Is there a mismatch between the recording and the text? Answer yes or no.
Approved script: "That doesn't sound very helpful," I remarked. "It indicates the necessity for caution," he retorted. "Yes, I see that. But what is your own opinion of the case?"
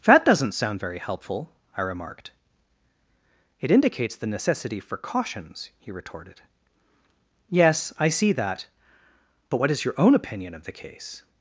yes